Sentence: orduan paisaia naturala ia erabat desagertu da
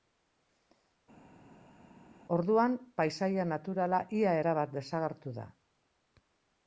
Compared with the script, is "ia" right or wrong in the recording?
right